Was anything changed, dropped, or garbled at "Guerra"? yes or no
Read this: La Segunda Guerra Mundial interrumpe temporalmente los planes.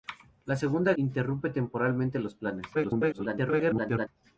yes